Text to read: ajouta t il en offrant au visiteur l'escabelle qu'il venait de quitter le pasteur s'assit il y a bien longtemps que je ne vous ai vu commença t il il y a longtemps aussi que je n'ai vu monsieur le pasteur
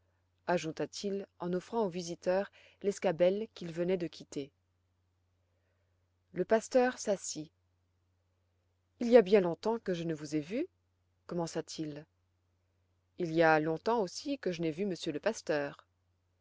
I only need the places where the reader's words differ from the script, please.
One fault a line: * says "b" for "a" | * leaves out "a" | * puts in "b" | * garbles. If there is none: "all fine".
all fine